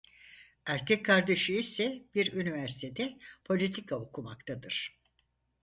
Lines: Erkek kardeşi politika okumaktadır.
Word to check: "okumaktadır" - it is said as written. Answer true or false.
true